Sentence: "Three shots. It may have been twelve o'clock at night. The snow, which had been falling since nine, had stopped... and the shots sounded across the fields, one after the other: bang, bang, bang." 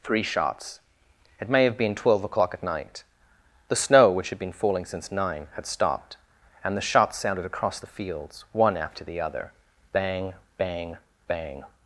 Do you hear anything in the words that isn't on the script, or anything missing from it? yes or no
no